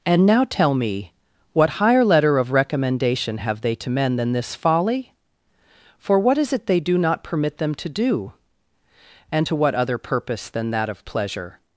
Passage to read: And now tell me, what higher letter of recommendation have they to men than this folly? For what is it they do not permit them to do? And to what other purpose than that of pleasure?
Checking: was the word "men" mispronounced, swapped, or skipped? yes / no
no